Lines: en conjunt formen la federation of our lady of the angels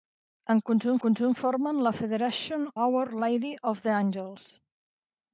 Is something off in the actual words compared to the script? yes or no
yes